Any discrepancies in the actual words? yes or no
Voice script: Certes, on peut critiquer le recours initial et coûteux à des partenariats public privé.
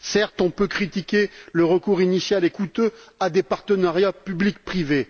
no